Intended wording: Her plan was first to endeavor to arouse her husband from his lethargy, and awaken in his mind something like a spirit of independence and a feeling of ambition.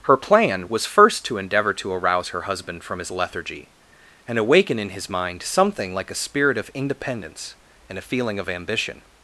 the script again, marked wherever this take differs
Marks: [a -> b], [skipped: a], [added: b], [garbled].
Her plan was first to endeavor to arouse her husband from his lethargy, and awaken in his mind something like a spirit of independence and a feeling of ambition.